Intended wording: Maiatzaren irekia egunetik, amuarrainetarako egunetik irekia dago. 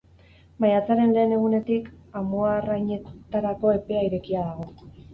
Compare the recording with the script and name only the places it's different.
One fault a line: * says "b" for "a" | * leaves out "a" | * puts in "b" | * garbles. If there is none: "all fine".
* says "lehen" for "irekia"
* says "epea" for "egunetik"